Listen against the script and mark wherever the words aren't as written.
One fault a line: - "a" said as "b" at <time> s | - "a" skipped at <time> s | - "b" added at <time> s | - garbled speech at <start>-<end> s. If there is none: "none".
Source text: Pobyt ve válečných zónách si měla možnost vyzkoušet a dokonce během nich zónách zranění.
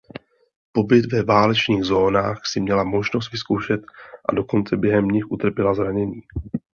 - "zónách" said as "utrpěla" at 5.3 s